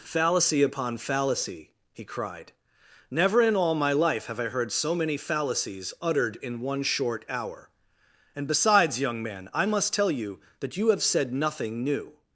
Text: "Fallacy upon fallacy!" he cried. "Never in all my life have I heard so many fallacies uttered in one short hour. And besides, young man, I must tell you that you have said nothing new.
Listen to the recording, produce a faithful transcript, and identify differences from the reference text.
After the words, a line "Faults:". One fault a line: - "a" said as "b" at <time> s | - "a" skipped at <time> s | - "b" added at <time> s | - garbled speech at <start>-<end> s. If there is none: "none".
"Fallacy upon fallacy!" he cried. "Never in all my life have I heard so many fallacies uttered in one short hour. And besides, young man, I must tell you that you have said nothing new.
Faults:
none